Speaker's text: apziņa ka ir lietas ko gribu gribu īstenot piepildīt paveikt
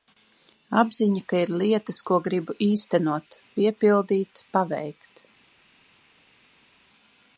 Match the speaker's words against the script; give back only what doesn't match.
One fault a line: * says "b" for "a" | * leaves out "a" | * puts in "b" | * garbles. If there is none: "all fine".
* leaves out "gribu"